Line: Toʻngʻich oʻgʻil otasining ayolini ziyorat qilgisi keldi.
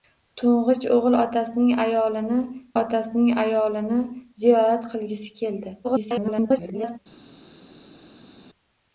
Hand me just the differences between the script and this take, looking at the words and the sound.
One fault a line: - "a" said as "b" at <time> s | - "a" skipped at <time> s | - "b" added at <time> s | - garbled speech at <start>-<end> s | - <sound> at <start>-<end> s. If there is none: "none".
- "otasining ayolini" added at 2.8 s
- garbled speech at 5.8-7.0 s